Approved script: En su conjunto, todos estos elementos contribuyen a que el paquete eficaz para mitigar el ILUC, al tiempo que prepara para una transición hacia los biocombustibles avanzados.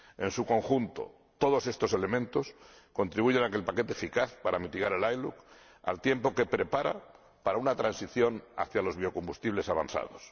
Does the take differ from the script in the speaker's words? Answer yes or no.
no